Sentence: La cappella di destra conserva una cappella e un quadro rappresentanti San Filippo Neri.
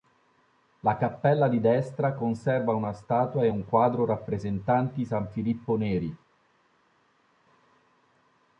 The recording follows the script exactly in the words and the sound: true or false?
false